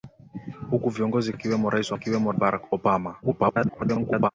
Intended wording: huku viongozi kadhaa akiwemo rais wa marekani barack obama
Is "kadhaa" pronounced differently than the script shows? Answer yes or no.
yes